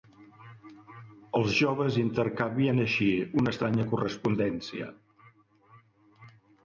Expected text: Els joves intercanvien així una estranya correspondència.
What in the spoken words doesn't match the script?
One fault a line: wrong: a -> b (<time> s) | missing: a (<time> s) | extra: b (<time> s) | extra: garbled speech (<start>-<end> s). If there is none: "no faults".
no faults